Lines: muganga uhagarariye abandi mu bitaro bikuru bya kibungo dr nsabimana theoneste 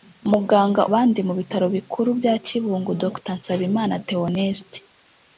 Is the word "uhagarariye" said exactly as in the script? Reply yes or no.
no